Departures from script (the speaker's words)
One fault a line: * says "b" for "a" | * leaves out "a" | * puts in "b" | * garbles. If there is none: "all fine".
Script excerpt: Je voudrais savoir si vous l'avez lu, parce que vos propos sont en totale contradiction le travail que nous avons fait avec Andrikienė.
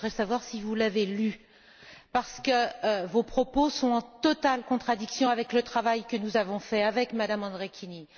* puts in "avec"
* puts in "Mme"